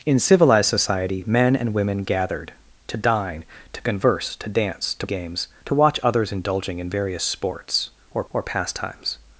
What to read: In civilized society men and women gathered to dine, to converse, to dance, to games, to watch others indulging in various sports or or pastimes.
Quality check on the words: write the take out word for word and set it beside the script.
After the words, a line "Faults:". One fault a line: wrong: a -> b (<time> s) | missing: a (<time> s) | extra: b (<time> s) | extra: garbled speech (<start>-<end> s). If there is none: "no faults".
In civilized society men and women gathered to dine, to converse, to dance, to games, to watch others indulging in various sports or or pastimes.
Faults:
no faults